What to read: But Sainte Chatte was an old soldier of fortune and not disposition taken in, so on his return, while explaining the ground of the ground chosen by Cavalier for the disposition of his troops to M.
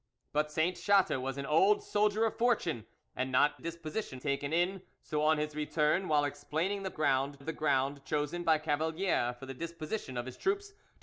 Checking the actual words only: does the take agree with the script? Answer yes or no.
yes